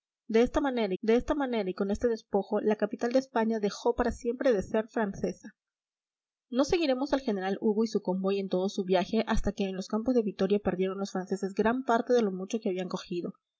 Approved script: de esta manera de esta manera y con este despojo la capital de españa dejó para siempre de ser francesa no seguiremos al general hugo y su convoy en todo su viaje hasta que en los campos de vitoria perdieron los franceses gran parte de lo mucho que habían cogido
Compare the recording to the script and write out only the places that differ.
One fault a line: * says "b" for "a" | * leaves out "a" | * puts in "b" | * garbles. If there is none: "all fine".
all fine